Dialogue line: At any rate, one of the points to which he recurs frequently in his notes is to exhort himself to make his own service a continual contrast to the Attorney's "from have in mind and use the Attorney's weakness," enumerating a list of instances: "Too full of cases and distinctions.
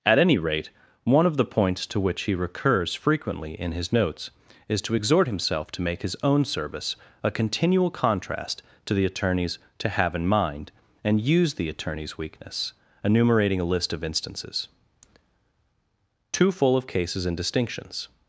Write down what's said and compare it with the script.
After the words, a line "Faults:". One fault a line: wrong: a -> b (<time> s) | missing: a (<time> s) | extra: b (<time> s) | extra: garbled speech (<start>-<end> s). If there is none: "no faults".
At any rate, one of the points to which he recurs frequently in his notes is to exhort himself to make his own service a continual contrast to the Attorney's "to have in mind and use the Attorney's weakness," enumerating a list of instances: "Too full of cases and distinctions.
Faults:
wrong: from -> to (9.8 s)